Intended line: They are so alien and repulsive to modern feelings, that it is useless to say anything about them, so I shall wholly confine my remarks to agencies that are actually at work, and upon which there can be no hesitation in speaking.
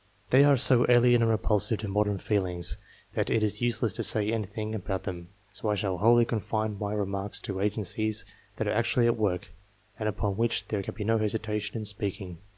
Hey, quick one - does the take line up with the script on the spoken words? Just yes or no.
yes